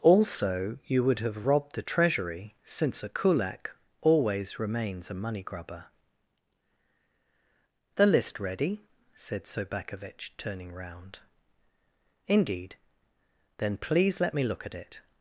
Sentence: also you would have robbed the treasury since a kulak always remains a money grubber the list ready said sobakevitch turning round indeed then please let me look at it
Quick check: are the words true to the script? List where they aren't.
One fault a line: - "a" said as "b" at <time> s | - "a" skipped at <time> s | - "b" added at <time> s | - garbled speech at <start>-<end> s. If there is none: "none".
none